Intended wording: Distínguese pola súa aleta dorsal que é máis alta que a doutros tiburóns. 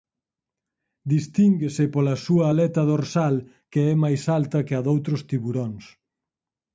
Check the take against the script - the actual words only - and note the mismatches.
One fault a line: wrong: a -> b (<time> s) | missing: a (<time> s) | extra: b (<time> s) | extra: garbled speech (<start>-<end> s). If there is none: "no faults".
no faults